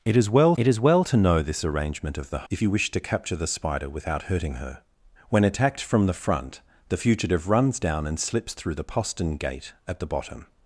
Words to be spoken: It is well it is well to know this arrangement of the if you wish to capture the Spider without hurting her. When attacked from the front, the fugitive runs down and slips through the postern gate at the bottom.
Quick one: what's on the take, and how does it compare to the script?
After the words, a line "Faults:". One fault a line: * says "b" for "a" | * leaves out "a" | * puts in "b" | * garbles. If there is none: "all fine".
It is well it is well to know this arrangement of the if you wish to capture the Spider without hurting her. When attacked from the front, the fugitive runs down and slips through the postern gate at the bottom.
Faults:
all fine